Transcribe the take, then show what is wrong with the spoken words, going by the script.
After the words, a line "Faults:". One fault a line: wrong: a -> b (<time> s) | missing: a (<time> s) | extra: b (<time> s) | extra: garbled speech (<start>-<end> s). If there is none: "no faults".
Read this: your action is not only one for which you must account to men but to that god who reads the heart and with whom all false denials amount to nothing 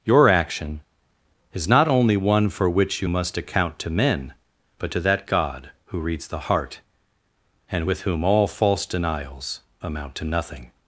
your action is not only one for which you must account to men but to that god who reads the heart and with whom all false denials amount to nothing
Faults:
no faults